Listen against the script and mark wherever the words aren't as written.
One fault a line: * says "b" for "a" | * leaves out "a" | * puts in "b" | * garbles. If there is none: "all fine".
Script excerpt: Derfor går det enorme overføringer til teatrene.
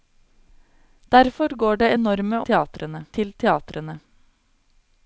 * says "teatrene" for "overføringer"